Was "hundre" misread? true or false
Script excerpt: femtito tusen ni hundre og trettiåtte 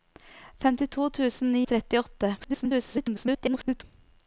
true